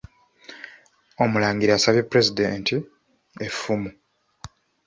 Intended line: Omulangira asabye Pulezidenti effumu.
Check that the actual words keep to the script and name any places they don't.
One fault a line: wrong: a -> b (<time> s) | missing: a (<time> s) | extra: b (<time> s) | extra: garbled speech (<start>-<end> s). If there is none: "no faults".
no faults